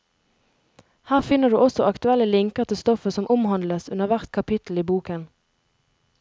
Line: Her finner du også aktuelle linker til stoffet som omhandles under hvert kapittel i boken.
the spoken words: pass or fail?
pass